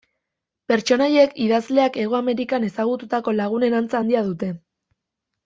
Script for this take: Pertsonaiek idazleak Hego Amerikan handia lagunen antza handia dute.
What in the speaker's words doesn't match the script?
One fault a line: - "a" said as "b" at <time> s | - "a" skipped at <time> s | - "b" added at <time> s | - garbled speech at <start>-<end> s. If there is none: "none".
- "handia" said as "ezagututako" at 2.7 s